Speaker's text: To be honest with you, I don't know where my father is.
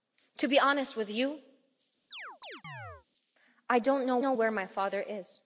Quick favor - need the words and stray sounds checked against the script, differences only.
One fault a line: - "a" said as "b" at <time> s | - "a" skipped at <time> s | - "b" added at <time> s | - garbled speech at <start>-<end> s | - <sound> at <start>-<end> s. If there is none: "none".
- chirp at 2.1-3.1 s
- "know" added at 4.2 s